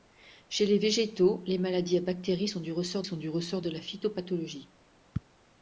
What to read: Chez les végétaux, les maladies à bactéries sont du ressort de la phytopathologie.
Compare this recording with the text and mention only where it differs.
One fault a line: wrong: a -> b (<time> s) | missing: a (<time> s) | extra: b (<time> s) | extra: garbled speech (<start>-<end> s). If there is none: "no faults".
extra: sont du ressort (3.0 s)